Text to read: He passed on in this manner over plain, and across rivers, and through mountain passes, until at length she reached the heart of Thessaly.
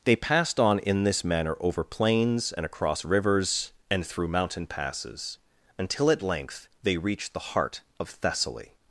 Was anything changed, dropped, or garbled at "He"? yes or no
yes